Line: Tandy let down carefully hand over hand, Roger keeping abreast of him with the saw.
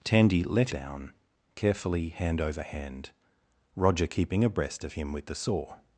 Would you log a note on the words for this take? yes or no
no